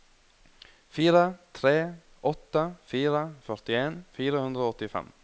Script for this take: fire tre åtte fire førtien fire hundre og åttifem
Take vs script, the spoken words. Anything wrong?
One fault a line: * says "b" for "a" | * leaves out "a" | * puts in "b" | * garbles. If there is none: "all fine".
all fine